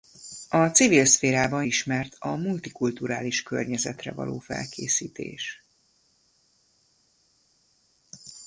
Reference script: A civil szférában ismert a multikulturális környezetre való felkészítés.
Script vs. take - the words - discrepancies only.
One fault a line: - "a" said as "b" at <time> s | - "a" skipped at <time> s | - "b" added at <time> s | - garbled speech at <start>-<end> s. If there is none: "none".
none